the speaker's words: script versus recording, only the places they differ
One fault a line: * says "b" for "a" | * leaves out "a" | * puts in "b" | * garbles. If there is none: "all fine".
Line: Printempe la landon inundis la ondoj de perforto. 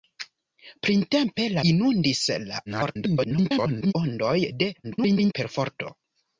* leaves out "landon"
* garbles
* garbles